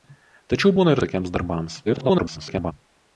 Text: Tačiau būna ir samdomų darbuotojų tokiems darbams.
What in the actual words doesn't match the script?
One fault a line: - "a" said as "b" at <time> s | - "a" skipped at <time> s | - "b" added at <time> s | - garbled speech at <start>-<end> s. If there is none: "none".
- "samdomų darbuotojų" skipped at 1.0 s
- garbled speech at 1.9-2.7 s